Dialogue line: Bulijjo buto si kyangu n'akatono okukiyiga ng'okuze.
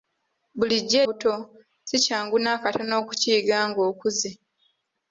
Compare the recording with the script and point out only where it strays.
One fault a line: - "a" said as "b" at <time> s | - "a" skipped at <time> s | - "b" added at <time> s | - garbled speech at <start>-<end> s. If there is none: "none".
none